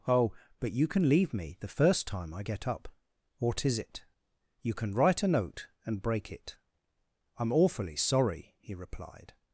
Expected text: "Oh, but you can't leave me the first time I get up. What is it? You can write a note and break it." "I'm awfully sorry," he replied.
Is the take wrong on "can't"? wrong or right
wrong